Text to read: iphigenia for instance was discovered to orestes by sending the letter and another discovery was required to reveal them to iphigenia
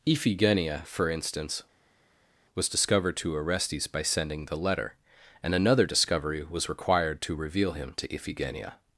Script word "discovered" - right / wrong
right